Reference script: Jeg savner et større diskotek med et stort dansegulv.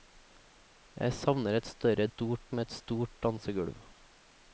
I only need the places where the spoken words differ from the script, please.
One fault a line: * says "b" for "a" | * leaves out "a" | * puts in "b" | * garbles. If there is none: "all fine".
* says "stort" for "diskotek"